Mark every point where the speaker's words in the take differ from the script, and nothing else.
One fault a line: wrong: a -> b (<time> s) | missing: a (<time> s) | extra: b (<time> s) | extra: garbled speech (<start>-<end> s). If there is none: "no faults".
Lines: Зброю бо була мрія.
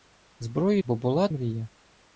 no faults